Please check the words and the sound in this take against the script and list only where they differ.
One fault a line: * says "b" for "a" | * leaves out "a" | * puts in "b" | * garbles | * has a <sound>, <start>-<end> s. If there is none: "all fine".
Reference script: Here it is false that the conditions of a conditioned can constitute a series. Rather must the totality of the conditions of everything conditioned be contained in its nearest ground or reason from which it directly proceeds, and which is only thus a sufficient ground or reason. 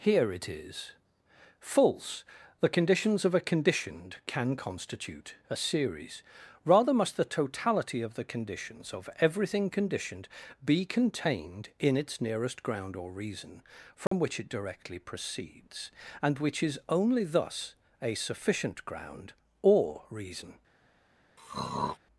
* leaves out "that"
* has a dropout, 14.1-14.1 s
* has a throat clearing, 21.4-22.0 s